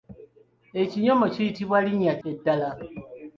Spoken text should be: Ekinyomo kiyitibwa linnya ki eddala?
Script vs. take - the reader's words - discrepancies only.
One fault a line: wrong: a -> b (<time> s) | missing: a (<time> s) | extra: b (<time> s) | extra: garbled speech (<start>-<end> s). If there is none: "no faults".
missing: ki (2.1 s)